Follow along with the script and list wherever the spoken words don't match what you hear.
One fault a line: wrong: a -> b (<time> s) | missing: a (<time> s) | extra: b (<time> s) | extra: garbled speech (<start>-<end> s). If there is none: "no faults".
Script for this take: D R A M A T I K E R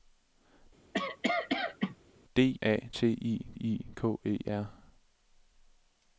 missing: R (2.6 s)
wrong: M A T -> T I (2.9 s)